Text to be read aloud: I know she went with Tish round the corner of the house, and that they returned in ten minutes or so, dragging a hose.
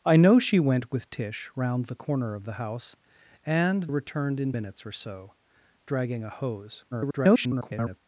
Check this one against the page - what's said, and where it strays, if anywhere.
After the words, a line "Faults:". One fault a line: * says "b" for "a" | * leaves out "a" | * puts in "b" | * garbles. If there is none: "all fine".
I know she went with Tish round the corner of the house, and returned in minutes or so, dragging a hose. [garbled]
Faults:
* leaves out "that they"
* leaves out "ten"
* garbles